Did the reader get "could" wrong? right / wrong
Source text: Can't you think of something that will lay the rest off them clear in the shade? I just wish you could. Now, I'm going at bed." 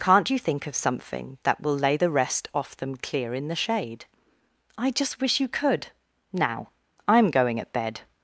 right